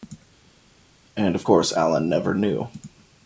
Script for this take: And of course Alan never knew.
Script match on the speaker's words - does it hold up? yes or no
yes